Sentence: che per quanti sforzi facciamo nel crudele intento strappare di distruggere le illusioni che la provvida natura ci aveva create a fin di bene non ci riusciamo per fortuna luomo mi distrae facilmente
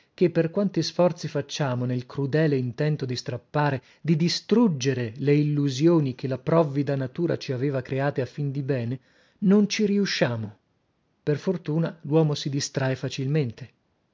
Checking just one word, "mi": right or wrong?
wrong